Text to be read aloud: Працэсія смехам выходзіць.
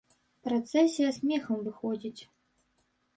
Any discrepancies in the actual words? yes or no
no